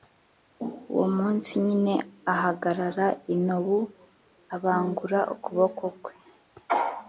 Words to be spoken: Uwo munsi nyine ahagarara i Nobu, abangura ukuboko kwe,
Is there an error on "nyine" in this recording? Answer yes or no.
no